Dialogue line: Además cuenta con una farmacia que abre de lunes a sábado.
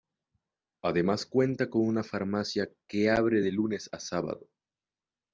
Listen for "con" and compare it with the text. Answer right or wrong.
right